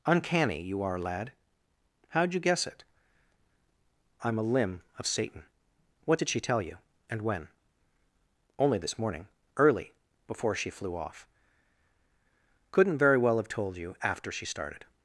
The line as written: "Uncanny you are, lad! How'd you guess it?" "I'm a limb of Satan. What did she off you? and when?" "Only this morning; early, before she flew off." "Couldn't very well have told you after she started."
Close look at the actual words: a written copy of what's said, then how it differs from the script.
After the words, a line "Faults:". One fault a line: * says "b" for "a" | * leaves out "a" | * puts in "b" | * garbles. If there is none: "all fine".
"Uncanny you are, lad! How'd you guess it?" "I'm a limb of Satan. What did she tell you? and when?" "Only this morning; early, before she flew off." "Couldn't very well have told you after she started."
Faults:
* says "tell" for "off"